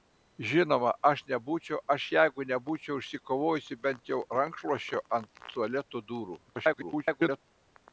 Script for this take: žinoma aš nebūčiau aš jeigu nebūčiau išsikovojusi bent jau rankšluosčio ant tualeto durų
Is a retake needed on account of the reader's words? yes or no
yes